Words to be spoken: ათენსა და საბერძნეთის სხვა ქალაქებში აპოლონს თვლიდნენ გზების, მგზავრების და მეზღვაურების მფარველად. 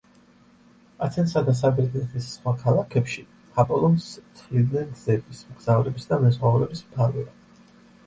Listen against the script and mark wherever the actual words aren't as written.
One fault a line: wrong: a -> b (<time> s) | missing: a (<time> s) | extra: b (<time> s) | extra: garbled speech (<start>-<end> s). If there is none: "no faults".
no faults